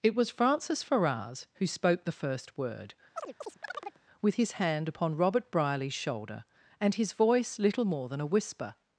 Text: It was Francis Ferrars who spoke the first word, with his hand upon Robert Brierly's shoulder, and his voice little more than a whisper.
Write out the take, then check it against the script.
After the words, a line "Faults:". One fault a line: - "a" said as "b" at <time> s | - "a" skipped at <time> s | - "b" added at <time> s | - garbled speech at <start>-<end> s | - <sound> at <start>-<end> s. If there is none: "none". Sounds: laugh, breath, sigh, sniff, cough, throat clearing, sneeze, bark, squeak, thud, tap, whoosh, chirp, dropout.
It was Francis Ferrars who spoke the first word, with his hand upon Robert Brierly's shoulder, and his voice little more than a whisper.
Faults:
- chirp at 3.2-4.0 s